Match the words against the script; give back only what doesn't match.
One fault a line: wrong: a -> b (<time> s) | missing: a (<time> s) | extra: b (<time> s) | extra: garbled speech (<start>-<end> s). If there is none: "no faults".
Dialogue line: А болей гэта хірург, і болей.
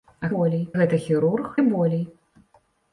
no faults